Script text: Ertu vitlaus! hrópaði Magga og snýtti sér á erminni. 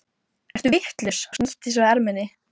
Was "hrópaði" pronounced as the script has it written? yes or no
no